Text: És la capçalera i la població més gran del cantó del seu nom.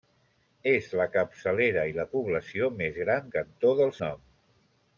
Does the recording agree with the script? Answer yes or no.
no